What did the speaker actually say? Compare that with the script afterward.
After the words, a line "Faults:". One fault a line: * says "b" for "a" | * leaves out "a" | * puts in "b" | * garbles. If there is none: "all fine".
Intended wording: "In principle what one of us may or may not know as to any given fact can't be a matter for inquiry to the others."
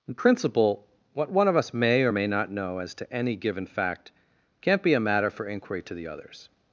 "In principle what one of us may or may not know as to any given fact can't be a matter for inquiry to the others."
Faults:
all fine